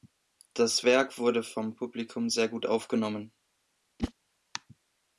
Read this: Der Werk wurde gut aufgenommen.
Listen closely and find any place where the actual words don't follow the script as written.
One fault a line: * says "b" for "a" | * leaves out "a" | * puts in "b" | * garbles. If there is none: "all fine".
* says "Das" for "Der"
* puts in "vom Publikum sehr"